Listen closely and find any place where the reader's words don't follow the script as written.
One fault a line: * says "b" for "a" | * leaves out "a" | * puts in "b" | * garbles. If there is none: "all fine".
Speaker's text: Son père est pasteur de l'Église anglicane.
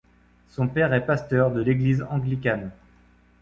all fine